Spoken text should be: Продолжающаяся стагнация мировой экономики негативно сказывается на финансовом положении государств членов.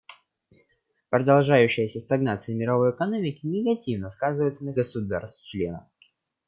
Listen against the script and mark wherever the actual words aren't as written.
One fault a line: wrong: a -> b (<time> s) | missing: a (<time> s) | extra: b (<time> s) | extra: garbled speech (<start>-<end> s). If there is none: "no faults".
missing: финансовом положении (4.7 s)